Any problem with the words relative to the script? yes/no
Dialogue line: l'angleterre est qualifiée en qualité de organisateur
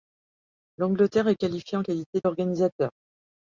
no